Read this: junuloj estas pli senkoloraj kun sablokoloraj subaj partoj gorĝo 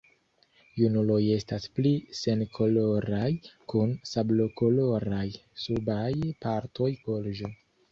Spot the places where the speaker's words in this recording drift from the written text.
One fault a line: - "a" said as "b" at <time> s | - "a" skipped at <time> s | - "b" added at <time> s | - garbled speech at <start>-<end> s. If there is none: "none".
none